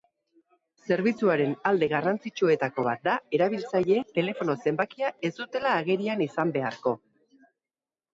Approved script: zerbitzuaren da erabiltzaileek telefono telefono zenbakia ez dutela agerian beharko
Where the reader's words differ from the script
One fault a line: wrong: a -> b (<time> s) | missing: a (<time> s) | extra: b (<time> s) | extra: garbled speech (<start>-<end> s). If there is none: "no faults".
extra: alde garrantzitsuetako bat (1.7 s)
missing: telefono (4.5 s)
extra: izan (6.3 s)